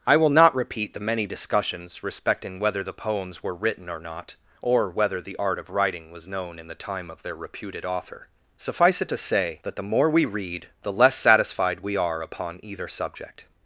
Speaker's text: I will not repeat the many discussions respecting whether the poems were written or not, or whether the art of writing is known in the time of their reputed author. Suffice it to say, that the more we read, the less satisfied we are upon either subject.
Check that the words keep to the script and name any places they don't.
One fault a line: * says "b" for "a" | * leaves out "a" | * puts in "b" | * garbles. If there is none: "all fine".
* says "was" for "is"